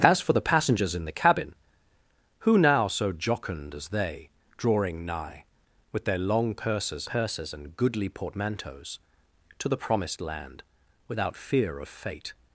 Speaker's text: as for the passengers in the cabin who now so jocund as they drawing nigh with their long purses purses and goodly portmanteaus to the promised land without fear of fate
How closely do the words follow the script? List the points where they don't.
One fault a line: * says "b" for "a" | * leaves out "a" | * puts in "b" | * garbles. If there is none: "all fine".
all fine